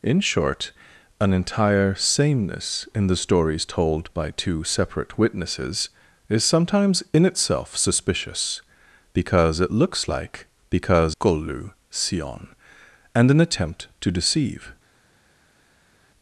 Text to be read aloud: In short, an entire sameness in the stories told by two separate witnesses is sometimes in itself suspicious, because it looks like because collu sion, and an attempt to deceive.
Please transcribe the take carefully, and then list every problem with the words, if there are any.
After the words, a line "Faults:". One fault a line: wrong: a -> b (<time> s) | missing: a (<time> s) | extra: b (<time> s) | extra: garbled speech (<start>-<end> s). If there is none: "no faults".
In short, an entire sameness in the stories told by two separate witnesses is sometimes in itself suspicious, because it looks like because collu sion, and an attempt to deceive.
Faults:
no faults